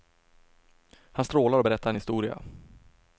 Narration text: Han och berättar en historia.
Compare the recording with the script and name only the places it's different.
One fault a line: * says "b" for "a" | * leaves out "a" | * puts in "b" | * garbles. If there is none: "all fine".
* puts in "strålar"